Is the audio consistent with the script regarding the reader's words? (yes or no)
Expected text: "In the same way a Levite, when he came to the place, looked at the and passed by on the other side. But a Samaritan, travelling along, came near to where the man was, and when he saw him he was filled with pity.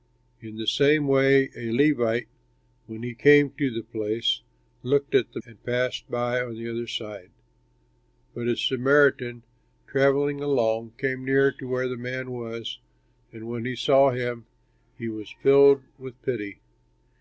yes